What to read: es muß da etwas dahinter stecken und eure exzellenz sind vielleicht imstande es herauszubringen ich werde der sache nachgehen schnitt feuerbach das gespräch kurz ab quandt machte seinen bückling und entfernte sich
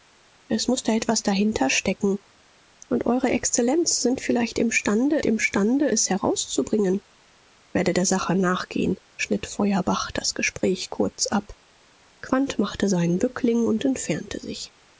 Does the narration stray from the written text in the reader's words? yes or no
yes